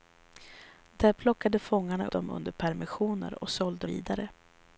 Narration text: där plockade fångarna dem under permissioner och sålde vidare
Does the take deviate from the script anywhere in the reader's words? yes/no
no